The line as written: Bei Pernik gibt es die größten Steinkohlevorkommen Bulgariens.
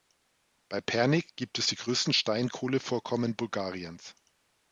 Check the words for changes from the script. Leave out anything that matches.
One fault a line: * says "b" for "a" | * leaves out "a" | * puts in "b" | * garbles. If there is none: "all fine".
all fine